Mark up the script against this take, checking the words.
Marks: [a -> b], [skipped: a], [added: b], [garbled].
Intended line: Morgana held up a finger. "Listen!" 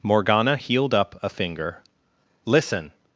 Morgana [held -> healed] up a finger. "Listen!"